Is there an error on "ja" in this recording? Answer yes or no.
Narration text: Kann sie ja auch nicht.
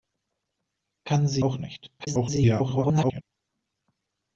yes